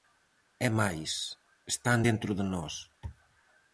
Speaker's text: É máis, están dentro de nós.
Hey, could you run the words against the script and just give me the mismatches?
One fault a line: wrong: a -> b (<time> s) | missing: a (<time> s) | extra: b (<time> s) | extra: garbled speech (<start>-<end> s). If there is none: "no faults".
no faults